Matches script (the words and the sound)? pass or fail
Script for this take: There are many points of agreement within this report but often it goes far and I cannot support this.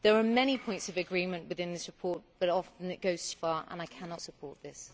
pass